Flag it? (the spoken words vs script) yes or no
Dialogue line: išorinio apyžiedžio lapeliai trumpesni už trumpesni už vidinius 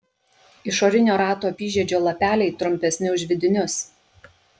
yes